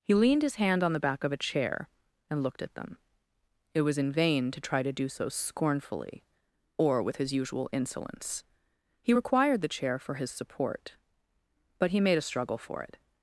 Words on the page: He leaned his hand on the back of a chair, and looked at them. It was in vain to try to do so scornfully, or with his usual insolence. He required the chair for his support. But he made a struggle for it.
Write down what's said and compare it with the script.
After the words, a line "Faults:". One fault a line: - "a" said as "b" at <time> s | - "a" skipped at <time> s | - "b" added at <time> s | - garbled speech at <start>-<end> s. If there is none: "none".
He leaned his hand on the back of a chair, and looked at them. It was in vain to try to do so scornfully, or with his usual insolence. He required the chair for his support. But he made a struggle for it.
Faults:
none